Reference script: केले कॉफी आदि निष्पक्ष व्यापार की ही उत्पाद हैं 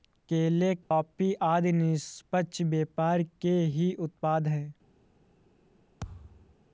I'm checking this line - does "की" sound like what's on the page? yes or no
no